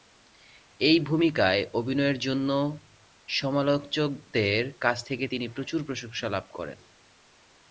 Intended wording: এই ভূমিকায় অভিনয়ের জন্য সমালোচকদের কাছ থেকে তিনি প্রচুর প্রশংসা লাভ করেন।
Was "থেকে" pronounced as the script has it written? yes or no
yes